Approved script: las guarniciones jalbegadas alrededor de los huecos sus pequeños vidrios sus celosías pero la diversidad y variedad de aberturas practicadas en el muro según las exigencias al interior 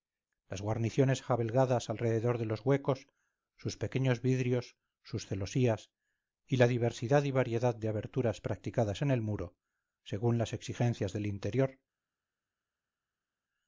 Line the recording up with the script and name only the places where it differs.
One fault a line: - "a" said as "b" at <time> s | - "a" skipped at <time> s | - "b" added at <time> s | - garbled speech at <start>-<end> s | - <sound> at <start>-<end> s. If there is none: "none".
- "pero" said as "y" at 6.5 s
- "al" said as "del" at 11.1 s